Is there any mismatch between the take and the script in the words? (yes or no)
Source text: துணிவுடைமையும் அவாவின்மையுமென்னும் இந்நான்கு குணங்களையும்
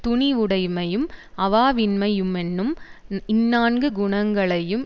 no